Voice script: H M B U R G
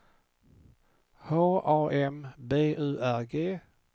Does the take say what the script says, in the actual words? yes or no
no